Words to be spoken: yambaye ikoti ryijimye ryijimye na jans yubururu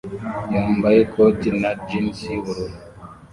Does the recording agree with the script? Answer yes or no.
no